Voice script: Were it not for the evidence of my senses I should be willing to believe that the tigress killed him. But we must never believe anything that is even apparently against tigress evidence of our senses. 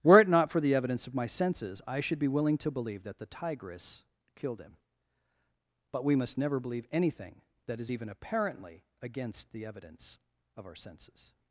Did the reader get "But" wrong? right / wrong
right